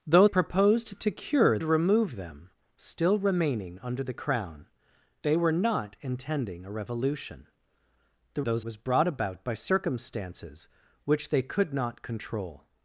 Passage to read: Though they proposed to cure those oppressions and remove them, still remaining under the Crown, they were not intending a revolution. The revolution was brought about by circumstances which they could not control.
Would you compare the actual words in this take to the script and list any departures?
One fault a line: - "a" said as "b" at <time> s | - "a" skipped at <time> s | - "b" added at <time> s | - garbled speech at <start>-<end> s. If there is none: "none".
- "they" skipped at 0.3 s
- "those oppressions and" skipped at 1.6 s
- "revolution" said as "those" at 8.4 s